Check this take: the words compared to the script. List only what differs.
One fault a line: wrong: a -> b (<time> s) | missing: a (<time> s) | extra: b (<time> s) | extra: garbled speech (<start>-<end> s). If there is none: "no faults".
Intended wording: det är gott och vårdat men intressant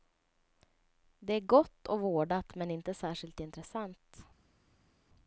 extra: inte särskilt (2.7 s)